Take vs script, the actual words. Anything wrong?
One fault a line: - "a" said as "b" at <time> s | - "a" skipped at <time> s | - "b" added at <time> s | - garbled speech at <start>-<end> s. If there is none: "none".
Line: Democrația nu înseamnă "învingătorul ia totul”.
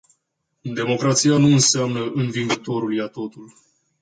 none